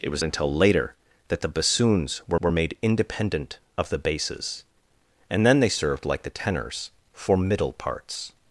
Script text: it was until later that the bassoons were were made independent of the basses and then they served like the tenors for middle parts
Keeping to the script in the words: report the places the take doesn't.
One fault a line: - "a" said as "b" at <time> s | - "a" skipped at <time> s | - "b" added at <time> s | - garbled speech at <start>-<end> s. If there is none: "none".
none